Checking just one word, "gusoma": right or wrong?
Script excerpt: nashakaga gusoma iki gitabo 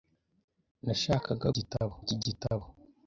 wrong